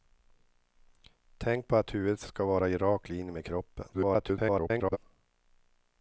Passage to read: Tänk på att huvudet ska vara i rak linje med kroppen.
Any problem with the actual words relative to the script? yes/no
yes